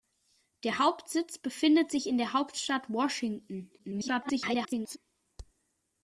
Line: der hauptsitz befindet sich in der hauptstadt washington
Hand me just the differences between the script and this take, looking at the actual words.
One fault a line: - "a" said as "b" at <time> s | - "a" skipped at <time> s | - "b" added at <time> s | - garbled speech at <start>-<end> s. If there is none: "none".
- garbled speech at 3.8-5.0 s